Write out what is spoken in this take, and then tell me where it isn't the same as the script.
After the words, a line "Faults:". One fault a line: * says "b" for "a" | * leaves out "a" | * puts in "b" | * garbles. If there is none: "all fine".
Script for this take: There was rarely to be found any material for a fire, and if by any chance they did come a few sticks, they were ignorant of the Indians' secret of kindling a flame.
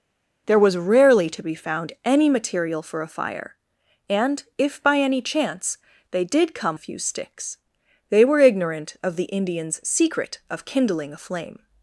There was rarely to be found any material for a fire, and if by any chance they did come a few sticks, they were ignorant of the Indians' secret of kindling a flame.
Faults:
all fine